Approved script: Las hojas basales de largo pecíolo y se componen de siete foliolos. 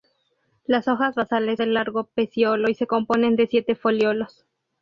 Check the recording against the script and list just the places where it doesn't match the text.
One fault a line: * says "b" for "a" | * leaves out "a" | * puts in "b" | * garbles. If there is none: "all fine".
all fine